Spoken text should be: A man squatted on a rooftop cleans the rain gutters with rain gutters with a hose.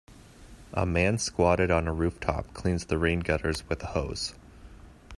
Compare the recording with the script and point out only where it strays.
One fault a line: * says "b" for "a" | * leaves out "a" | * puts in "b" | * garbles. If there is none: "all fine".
* leaves out "rain gutters with"